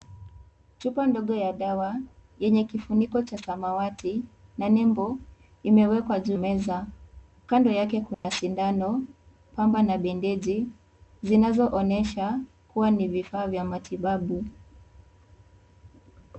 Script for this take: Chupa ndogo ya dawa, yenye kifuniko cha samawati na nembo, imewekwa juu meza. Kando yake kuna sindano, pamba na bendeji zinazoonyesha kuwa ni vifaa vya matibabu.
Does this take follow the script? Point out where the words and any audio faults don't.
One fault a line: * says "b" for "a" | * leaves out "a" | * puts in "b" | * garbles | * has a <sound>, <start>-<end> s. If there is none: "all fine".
* has a dropout, 8.1-8.2 s